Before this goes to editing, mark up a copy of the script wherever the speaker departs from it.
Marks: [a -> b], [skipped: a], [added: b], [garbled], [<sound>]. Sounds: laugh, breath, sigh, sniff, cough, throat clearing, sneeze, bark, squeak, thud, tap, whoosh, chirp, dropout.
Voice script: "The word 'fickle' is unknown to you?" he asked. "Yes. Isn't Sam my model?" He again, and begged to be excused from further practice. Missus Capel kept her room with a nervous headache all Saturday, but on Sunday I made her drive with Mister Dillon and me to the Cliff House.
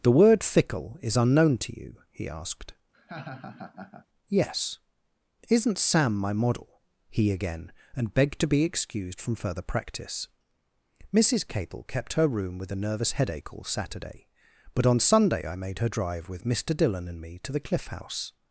"The word 'fickle' is unknown to you?" he asked. [laugh] "Yes. Isn't Sam my model?" He again, and begged to be excused from further practice. Missus Capel kept her room with a nervous headache all Saturday, but on Sunday I made her drive with Mister Dillon and me to the Cliff House.